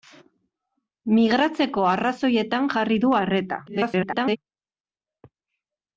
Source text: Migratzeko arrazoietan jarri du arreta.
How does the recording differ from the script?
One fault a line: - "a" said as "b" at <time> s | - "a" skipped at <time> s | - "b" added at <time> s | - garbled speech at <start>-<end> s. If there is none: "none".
- garbled speech at 3.7-4.4 s